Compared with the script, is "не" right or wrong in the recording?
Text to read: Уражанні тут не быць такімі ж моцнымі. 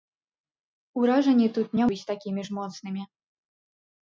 right